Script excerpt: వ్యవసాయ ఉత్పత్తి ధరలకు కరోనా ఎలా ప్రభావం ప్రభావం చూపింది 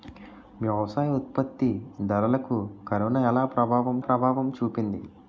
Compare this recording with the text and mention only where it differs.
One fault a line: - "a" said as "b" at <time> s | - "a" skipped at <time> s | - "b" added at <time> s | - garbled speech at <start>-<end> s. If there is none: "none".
none